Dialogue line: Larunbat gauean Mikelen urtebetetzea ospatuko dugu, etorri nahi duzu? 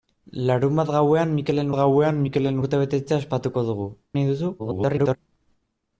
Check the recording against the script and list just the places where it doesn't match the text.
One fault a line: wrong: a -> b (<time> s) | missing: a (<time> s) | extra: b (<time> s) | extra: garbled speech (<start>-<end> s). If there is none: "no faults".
extra: gauean Mikelen (1.8 s)
missing: etorri (3.9 s)
extra: garbled speech (4.6-5.2 s)